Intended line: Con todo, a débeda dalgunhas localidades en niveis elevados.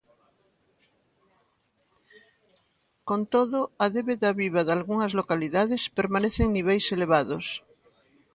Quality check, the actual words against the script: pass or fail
fail